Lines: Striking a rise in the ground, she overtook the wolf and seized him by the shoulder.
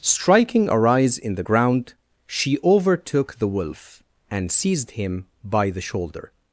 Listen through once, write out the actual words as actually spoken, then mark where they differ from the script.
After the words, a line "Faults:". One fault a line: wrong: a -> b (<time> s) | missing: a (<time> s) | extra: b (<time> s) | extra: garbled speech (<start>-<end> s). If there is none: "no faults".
Striking a rise in the ground, she overtook the wolf and seized him by the shoulder.
Faults:
no faults